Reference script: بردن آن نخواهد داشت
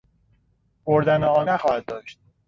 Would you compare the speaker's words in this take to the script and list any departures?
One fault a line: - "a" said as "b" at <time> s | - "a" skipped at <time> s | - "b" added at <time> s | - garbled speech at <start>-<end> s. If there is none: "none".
none